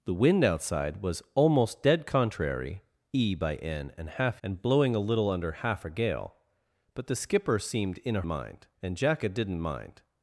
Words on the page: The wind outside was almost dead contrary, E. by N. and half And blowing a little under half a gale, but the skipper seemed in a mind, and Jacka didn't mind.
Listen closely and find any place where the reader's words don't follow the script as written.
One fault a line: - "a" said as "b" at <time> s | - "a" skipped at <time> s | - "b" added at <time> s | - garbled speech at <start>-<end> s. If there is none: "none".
none